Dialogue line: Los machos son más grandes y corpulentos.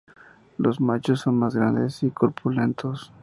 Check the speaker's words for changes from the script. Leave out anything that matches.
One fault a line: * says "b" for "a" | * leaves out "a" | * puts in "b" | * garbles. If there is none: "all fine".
all fine